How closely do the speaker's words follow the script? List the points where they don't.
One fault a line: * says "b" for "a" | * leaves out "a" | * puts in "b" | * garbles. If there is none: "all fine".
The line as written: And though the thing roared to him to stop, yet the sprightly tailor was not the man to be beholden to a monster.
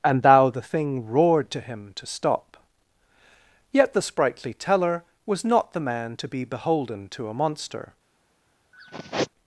* says "thou" for "though"
* says "teller" for "tailor"